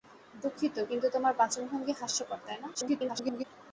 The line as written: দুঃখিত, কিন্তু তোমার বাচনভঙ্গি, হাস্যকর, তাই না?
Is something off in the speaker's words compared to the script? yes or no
yes